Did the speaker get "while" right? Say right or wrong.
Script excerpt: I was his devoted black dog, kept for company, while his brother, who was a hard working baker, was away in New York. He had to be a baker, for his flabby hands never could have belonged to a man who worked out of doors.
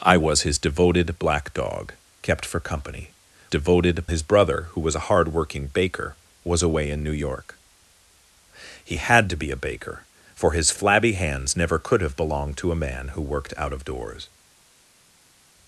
wrong